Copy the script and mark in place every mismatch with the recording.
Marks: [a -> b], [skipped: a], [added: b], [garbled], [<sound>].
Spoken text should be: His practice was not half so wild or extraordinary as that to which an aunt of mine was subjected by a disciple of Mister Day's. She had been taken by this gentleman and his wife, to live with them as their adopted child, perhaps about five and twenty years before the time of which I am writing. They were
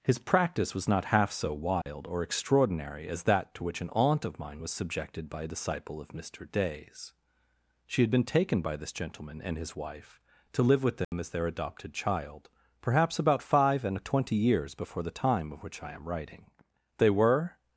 His practice was not half so wild [dropout] or extraordinary as that to which an aunt of mine was subjected by a disciple of Mister Day's. She had been taken by this gentleman and his wife, to live with them [dropout] as their adopted child, perhaps about five and twenty years before the time of which I am writing. They were